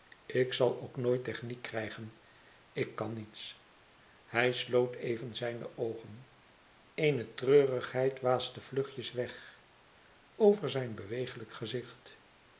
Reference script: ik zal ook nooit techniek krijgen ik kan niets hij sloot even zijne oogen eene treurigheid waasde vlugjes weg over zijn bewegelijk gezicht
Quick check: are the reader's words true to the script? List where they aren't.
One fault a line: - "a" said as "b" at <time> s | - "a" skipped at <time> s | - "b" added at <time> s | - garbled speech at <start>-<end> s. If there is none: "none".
none